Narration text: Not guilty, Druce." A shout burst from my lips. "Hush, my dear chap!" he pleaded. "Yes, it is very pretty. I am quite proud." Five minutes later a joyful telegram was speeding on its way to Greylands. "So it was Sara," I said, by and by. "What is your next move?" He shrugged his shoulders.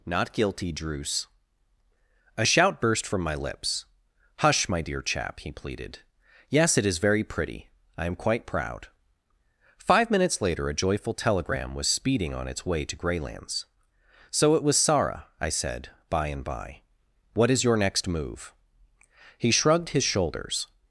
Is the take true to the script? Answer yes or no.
yes